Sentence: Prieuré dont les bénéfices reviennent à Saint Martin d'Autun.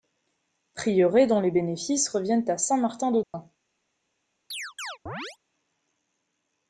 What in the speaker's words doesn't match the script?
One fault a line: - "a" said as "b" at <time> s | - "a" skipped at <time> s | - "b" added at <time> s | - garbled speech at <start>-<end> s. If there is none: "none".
none